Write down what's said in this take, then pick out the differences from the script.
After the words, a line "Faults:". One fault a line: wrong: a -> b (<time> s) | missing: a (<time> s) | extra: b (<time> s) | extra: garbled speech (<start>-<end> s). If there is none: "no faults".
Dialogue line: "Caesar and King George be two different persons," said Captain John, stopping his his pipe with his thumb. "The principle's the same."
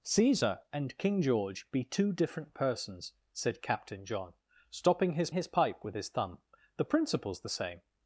"Caesar and King George be two different persons," said Captain John, stopping his his pipe with his thumb. "The principle's the same."
Faults:
no faults